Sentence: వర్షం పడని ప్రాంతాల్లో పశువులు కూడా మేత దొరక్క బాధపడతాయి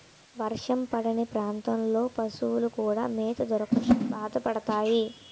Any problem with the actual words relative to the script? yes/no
no